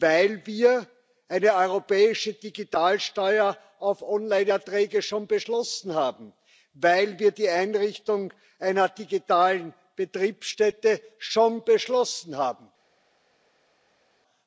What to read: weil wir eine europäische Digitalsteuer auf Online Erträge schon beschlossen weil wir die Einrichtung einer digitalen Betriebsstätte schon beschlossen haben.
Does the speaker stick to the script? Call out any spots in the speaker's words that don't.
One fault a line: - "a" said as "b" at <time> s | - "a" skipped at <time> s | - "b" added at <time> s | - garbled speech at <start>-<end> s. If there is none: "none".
- "haben" added at 5.9 s